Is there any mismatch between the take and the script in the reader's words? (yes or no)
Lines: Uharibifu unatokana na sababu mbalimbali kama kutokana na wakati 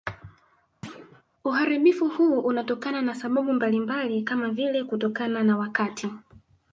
yes